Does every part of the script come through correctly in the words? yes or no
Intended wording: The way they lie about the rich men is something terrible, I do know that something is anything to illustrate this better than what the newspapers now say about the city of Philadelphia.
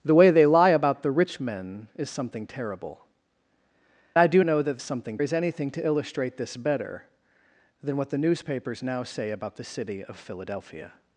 yes